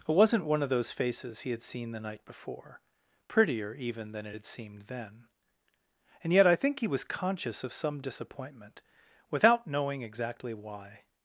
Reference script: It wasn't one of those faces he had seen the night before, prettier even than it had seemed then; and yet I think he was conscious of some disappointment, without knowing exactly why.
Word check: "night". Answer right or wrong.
right